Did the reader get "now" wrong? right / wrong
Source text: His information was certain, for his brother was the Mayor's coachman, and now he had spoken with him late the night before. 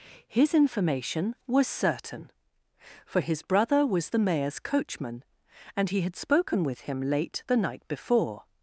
wrong